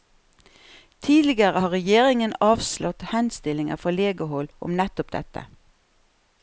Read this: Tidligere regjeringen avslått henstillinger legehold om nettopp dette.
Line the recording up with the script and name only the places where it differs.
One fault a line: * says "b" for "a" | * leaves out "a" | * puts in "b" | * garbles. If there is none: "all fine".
* puts in "har"
* puts in "fra"